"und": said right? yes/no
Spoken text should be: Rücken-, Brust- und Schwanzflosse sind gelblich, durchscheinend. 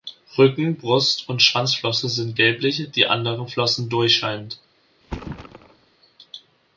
yes